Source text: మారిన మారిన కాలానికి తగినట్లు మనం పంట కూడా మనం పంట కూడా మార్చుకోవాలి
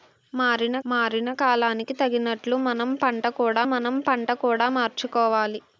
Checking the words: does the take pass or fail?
pass